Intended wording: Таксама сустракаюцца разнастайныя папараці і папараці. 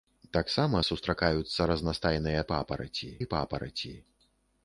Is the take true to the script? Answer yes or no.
yes